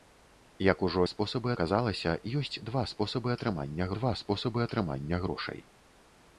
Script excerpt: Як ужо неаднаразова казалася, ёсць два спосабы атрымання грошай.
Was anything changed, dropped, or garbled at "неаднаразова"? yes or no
yes